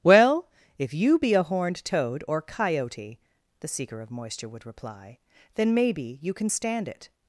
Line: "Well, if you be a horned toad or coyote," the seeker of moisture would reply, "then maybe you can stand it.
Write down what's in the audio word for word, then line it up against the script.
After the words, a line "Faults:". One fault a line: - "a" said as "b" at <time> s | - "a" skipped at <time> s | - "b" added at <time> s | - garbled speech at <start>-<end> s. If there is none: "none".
"Well, if you be a horned toad or coyote," the seeker of moisture would reply, "then maybe you can stand it.
Faults:
none